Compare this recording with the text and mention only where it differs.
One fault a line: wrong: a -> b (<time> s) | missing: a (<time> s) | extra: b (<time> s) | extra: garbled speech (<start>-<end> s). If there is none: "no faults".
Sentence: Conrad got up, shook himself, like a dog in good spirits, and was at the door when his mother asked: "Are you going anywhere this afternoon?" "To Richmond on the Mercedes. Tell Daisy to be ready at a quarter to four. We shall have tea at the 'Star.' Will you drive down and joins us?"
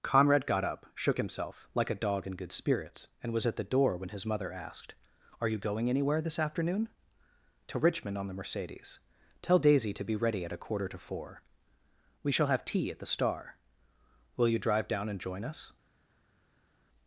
wrong: joins -> join (15.2 s)